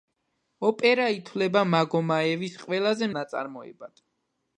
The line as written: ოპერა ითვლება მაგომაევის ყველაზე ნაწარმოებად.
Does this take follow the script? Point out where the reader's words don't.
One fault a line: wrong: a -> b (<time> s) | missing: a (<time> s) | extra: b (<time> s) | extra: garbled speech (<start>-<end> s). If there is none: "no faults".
no faults